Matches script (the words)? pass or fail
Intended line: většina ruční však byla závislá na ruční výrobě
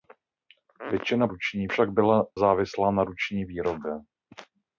pass